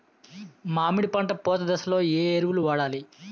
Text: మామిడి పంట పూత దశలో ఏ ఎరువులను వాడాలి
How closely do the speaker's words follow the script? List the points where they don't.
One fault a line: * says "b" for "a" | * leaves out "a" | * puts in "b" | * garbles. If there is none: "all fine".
all fine